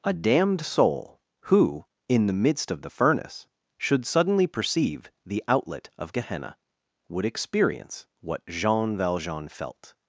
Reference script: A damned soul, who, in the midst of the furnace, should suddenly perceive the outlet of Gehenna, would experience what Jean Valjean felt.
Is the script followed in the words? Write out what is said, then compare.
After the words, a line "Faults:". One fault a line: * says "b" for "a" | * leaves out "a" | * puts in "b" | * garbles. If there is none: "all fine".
A damned soul, who, in the midst of the furnace, should suddenly perceive the outlet of Gehenna, would experience what Jean Valjean felt.
Faults:
all fine